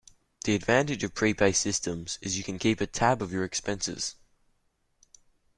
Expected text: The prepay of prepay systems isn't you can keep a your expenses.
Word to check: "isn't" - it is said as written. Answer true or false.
false